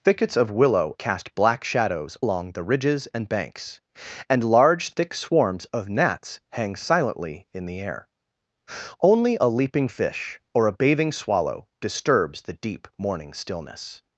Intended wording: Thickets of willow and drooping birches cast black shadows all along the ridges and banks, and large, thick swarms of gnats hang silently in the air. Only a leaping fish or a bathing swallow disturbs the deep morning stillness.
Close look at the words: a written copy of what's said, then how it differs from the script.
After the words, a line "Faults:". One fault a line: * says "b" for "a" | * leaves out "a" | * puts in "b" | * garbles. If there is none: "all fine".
Thickets of willow cast black shadows along the ridges and banks, and large, thick swarms of gnats hang silently in the air. Only a leaping fish or a bathing swallow disturbs the deep morning stillness.
Faults:
* leaves out "and drooping birches"
* leaves out "all"